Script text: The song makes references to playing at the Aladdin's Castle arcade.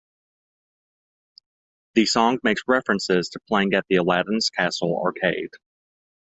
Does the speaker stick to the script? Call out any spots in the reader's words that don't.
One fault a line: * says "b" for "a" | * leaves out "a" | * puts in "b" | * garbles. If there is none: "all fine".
all fine